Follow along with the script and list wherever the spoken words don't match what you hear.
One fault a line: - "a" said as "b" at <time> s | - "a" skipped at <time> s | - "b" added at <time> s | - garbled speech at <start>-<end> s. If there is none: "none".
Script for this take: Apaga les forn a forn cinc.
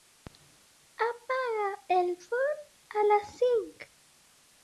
- "les" said as "el" at 2.0 s
- "forn" said as "les" at 3.1 s